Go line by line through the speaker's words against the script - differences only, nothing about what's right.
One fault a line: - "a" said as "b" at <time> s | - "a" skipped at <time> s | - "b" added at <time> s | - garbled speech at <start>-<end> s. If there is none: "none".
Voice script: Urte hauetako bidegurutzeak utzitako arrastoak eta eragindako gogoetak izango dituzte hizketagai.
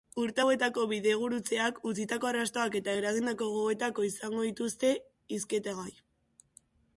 none